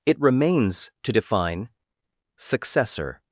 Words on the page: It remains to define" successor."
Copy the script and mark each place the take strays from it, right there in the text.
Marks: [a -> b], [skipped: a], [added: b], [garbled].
It remains to define" successor."